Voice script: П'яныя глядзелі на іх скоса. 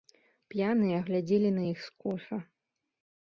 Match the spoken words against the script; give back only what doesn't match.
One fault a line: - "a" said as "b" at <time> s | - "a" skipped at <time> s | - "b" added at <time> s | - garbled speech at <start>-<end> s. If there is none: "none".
none